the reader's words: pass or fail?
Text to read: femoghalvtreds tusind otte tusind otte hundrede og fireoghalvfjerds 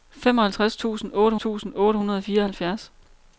pass